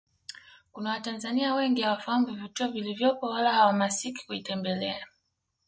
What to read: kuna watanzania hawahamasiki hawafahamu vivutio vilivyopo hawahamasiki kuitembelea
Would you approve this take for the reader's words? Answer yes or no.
no